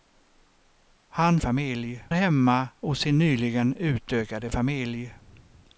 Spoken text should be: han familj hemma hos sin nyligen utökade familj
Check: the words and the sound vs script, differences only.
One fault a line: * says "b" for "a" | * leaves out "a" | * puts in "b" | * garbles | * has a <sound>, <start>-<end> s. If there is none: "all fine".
all fine